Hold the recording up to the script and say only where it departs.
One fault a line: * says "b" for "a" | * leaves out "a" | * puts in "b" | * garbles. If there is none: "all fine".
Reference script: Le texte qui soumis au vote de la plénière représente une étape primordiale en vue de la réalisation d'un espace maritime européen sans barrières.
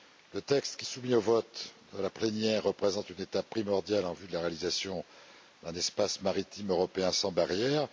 all fine